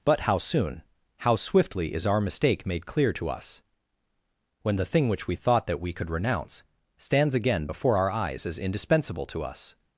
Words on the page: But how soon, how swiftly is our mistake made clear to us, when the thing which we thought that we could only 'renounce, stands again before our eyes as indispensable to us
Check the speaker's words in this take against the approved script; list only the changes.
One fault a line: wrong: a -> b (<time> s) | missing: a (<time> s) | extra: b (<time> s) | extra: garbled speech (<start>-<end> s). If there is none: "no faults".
missing: only (6.1 s)